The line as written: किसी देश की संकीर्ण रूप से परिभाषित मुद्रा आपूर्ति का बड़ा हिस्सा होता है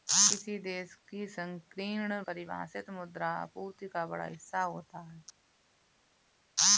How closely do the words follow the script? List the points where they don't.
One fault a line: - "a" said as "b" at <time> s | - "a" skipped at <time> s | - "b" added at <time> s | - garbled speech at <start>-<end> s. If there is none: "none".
- "रूप से" skipped at 2.2 s